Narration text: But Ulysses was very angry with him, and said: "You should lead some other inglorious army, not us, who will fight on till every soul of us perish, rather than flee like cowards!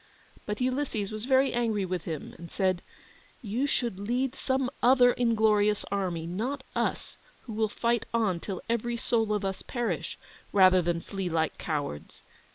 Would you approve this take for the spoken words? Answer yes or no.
yes